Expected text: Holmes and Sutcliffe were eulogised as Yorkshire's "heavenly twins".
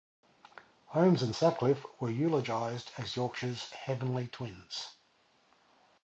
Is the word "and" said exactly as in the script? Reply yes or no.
yes